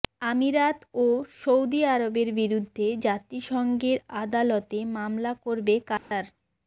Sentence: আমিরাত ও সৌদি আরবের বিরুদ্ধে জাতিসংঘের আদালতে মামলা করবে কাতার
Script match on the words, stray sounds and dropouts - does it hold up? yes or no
no